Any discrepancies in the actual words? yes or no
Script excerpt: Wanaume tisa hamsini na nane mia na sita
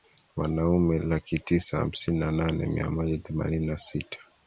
yes